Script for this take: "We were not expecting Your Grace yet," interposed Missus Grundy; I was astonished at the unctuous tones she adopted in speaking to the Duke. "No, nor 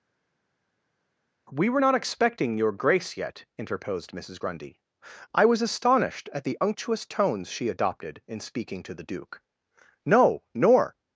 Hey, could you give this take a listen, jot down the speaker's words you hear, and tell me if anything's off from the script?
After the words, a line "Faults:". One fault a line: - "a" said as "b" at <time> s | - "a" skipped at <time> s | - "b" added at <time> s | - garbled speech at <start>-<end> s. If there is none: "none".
"We were not expecting Your Grace yet," interposed Missus Grundy; I was astonished at the unctuous tones she adopted in speaking to the Duke. "No, nor
Faults:
none